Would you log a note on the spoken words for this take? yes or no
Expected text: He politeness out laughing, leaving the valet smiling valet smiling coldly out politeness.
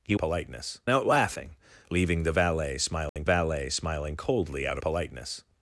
no